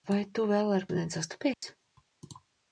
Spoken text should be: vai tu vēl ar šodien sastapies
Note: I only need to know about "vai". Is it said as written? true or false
true